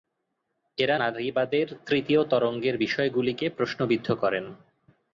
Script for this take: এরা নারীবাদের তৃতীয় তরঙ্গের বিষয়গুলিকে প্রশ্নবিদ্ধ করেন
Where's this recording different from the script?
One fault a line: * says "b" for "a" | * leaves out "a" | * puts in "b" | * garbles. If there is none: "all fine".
all fine